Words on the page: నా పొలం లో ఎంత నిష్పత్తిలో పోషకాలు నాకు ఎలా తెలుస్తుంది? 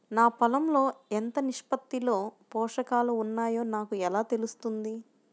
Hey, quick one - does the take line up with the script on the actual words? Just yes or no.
no